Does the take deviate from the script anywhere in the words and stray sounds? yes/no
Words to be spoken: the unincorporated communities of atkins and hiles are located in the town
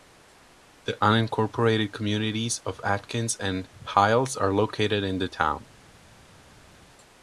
no